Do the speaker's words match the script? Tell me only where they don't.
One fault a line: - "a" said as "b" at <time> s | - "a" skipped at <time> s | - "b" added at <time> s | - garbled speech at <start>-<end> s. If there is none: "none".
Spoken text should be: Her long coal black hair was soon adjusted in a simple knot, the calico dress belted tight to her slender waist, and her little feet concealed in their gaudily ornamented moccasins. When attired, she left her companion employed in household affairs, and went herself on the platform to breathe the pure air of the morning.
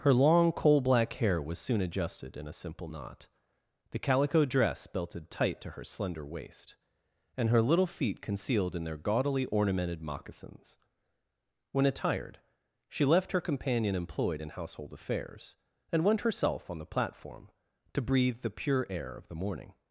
none